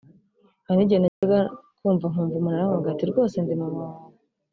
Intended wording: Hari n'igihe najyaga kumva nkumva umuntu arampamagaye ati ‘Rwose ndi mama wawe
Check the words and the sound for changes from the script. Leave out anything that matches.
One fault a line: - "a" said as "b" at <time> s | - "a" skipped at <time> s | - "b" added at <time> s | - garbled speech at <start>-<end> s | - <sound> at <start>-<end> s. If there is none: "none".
- dropout at 1.1-1.2 s